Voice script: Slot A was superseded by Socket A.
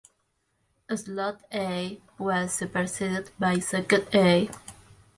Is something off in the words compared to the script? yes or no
no